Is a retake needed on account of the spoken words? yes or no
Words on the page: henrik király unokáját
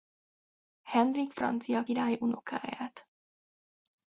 yes